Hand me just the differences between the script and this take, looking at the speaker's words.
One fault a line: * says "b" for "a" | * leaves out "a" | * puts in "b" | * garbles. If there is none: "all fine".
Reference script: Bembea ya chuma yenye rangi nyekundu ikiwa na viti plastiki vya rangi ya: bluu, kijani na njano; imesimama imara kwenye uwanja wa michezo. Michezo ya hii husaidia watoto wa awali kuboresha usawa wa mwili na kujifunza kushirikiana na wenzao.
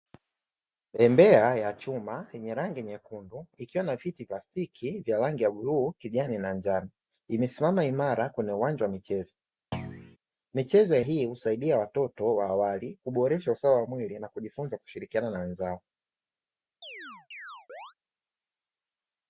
all fine